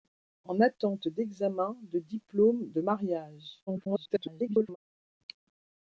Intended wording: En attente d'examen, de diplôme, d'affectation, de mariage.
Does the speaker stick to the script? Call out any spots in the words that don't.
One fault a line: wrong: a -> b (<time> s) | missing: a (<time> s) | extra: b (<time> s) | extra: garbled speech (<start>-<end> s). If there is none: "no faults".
missing: d'affectation (2.6 s)
extra: garbled speech (3.7-4.8 s)